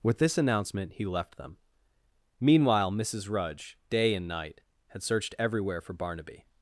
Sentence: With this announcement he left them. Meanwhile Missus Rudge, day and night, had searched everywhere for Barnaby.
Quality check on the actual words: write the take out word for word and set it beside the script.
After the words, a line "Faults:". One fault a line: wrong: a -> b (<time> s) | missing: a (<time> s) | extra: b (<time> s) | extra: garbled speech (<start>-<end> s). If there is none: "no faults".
With this announcement he left them. Meanwhile Missus Rudge, day and night, had searched everywhere for Barnaby.
Faults:
no faults